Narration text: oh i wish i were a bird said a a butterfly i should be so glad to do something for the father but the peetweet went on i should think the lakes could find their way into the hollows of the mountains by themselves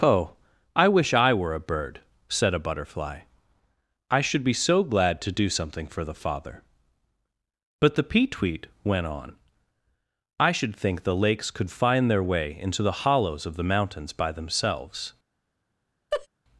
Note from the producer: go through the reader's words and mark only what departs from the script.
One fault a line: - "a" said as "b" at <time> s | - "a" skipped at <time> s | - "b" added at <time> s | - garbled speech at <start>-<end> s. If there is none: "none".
- "a" skipped at 2.6 s